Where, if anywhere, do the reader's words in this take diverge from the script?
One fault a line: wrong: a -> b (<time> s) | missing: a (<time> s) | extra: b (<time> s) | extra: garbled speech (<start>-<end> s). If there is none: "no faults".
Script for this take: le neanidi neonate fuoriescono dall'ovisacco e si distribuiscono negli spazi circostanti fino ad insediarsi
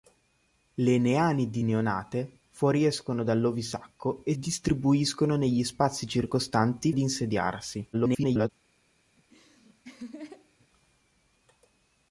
missing: si (4.3 s)
missing: fino (6.9 s)
extra: garbled speech (7.9-8.5 s)